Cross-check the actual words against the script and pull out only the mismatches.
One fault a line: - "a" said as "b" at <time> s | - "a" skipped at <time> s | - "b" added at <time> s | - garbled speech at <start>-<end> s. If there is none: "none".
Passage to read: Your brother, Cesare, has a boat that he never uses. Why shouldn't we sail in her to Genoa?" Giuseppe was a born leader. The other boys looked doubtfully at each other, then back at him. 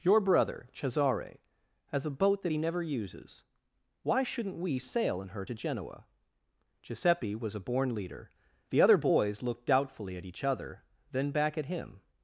none